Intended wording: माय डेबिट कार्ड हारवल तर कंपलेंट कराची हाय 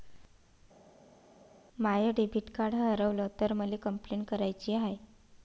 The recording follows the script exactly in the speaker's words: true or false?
false